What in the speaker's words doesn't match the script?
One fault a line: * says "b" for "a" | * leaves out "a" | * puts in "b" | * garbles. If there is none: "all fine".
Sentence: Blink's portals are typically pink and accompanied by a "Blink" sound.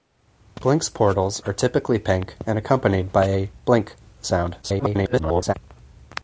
* garbles